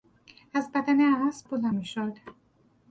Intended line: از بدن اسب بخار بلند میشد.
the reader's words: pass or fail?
fail